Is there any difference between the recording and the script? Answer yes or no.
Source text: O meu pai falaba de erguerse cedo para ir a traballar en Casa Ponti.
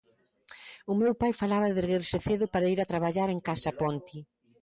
no